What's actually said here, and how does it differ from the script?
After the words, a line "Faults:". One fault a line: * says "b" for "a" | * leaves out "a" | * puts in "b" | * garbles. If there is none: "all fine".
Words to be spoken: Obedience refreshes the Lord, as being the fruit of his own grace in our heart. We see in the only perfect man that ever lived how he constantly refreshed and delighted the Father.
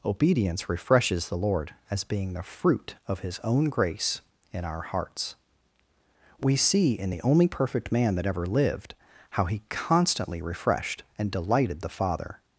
Obedience refreshes the Lord, as being the fruit of his own grace in our hearts. We see in the only perfect man that ever lived how he constantly refreshed and delighted the Father.
Faults:
* says "hearts" for "heart"